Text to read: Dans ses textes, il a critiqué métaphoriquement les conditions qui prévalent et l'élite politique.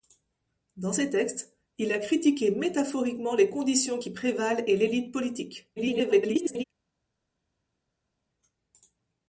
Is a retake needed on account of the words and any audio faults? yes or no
yes